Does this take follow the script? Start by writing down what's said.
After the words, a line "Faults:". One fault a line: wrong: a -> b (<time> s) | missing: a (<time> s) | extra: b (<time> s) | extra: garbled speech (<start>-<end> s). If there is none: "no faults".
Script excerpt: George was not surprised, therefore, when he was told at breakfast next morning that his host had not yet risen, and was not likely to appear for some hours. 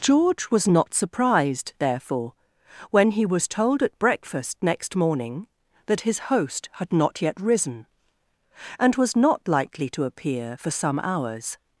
George was not surprised, therefore, when he was told at breakfast next morning that his host had not yet risen, and was not likely to appear for some hours.
Faults:
no faults